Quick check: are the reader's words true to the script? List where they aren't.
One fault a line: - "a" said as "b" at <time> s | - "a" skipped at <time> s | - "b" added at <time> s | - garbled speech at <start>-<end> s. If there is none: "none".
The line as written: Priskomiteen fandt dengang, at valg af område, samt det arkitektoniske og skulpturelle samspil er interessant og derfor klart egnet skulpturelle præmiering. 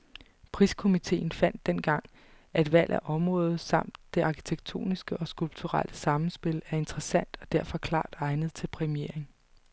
- "skulpturelle" said as "til" at 8.5 s